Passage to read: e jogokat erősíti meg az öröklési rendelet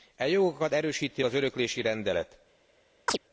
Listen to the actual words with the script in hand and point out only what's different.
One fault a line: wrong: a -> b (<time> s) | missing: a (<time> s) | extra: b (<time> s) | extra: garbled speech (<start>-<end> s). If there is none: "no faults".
missing: meg (1.2 s)